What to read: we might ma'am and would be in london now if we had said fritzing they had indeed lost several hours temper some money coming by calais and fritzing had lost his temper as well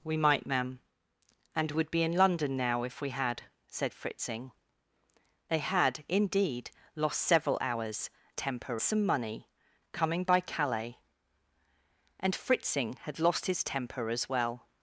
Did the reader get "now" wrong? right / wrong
right